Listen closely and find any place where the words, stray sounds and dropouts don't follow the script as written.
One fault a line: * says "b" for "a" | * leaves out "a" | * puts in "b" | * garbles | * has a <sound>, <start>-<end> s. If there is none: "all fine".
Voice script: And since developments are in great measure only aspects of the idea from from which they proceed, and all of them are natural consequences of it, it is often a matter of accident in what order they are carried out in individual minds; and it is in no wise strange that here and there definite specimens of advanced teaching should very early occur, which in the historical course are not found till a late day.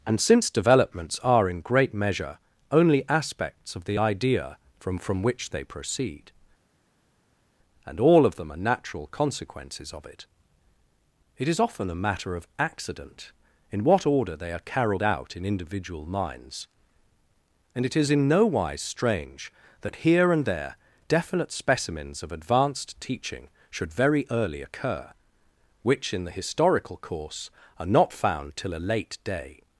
all fine